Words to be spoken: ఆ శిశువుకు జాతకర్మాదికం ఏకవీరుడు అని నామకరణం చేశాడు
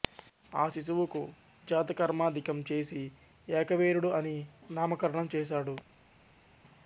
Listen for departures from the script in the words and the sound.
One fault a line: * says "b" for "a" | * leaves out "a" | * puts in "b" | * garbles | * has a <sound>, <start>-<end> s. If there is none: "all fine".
* puts in "చేసి"